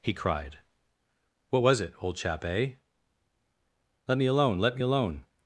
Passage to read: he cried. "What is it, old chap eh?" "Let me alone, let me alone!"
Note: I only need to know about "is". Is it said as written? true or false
false